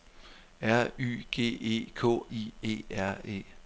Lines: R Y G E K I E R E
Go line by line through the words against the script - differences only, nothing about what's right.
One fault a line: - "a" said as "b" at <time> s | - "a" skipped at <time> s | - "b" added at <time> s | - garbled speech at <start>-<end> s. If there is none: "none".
none